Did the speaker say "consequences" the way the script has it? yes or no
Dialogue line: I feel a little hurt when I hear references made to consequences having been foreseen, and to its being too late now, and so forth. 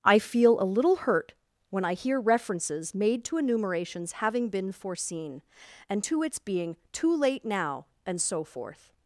no